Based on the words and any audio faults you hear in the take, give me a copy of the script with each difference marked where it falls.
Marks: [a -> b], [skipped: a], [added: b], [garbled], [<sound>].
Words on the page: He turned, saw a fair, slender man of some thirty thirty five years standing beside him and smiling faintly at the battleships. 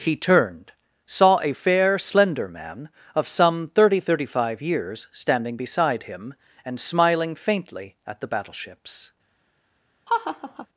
He turned, saw a fair, slender man of some thirty thirty five years standing beside him and smiling faintly at the battleships. [laugh]